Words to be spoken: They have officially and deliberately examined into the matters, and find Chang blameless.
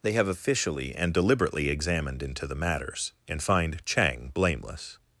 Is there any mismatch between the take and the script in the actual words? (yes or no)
no